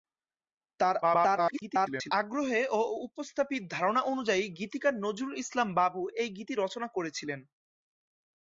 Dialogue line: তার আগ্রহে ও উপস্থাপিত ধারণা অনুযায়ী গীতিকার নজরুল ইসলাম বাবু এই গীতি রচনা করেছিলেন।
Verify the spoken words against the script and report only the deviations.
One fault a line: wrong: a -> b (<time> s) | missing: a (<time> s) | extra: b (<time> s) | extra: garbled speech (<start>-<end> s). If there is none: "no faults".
extra: garbled speech (1.0-2.1 s)